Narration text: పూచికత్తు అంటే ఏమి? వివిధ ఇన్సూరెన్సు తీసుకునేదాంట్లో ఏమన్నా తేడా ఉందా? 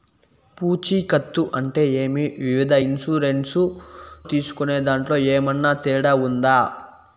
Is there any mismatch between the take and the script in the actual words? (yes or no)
no